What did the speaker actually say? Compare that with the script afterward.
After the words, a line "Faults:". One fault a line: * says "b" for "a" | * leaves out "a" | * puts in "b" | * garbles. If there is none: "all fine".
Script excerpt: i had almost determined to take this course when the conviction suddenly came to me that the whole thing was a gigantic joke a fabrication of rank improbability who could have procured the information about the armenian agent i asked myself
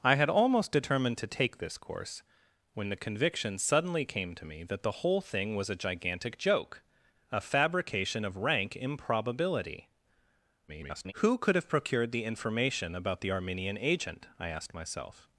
i had almost determined to take this course when the conviction suddenly came to me that the whole thing was a gigantic joke a fabrication of rank improbability [garbled] who could have procured the information about the armenian agent i asked myself
Faults:
* garbles